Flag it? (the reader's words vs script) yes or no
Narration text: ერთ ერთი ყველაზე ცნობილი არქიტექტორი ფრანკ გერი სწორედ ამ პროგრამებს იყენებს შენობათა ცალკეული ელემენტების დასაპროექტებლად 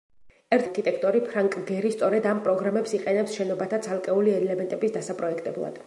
yes